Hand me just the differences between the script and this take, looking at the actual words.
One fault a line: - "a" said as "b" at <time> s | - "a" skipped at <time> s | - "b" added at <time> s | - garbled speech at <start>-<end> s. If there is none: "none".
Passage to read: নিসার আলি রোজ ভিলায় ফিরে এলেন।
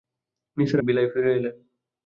- "আলি রোজ" skipped at 0.8 s